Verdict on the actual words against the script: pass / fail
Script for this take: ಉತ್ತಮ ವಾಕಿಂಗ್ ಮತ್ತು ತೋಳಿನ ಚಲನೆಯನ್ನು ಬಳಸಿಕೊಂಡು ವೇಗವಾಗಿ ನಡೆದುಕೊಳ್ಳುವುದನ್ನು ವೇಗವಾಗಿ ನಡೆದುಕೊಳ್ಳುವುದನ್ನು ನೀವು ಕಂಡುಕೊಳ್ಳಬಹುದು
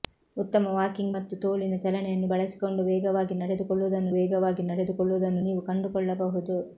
pass